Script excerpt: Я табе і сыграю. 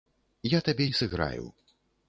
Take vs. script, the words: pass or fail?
pass